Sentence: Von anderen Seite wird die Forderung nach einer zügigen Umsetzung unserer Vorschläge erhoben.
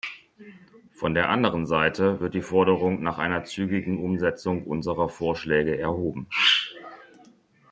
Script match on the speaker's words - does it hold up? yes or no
no